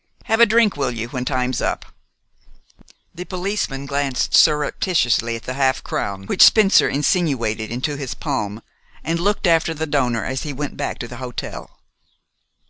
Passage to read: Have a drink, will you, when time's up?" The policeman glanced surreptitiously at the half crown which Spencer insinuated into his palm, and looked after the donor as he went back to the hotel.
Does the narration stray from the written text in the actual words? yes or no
no